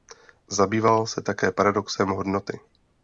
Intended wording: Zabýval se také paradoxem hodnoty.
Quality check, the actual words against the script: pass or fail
pass